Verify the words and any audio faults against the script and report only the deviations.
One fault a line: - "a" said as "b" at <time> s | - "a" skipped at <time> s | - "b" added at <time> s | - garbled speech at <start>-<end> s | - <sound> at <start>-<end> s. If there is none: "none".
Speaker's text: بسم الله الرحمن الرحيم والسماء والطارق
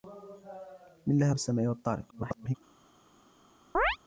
- "الرحمن الرحيم" skipped at 1.3 s
- garbled speech at 2.1-2.6 s
- chirp at 3.7-4.0 s